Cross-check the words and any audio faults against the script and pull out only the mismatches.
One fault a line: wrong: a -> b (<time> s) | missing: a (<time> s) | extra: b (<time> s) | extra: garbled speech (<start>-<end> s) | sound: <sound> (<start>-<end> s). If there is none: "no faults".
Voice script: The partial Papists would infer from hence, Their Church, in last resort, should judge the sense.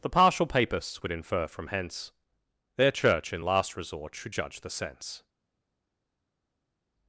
no faults